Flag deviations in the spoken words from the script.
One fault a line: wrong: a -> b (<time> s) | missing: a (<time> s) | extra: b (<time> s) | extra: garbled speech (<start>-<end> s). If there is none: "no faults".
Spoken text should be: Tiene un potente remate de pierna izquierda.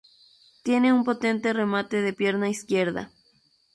no faults